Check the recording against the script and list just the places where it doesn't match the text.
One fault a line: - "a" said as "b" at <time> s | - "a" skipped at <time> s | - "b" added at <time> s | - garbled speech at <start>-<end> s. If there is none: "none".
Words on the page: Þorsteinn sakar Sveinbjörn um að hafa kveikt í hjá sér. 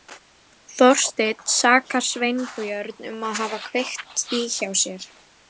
none